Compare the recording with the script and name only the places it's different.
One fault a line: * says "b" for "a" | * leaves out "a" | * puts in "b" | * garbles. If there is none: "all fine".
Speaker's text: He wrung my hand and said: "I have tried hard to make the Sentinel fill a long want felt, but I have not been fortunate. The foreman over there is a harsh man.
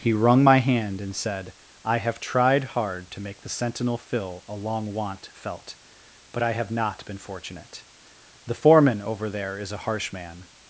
all fine